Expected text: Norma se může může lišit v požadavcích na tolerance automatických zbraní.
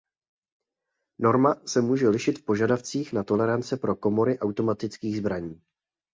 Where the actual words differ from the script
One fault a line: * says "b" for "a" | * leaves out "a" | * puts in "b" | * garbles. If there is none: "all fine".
* leaves out "může"
* puts in "pro komory"